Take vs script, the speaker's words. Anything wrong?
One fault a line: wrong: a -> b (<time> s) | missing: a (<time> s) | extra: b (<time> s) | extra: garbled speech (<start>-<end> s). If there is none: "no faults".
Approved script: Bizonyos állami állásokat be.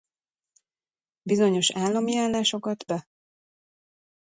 no faults